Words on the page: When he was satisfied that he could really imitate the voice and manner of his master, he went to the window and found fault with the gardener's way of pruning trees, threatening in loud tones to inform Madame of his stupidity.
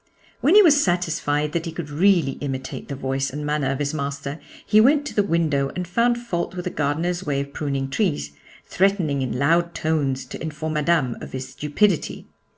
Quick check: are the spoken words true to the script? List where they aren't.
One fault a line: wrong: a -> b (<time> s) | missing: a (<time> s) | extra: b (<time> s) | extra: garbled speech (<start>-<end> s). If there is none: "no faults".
no faults